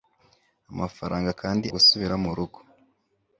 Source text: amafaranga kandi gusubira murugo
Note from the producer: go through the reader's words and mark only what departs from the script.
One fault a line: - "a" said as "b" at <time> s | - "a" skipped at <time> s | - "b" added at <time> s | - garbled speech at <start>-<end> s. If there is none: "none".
none